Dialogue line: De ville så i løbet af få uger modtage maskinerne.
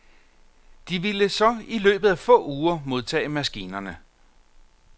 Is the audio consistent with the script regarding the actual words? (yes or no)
yes